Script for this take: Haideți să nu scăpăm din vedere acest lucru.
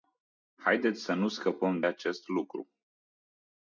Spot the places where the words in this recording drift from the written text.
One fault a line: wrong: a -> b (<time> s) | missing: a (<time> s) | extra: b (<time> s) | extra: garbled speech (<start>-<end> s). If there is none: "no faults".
missing: din vedere (1.8 s)